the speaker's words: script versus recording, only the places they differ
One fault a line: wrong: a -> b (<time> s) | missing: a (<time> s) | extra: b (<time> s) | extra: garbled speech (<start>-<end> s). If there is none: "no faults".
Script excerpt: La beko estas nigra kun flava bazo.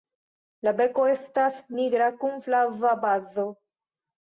no faults